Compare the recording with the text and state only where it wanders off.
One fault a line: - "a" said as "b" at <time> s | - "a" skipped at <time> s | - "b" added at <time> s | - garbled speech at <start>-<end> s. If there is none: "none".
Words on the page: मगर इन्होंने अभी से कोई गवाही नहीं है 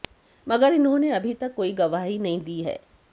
- "से" said as "तक" at 1.3 s
- "दी" added at 2.4 s